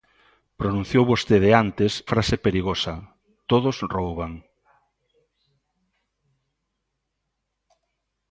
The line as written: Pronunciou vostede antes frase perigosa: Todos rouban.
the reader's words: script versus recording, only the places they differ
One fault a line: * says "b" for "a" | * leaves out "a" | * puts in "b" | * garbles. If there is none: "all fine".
all fine